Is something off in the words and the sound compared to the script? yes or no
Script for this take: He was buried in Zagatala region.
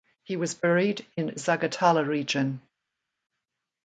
no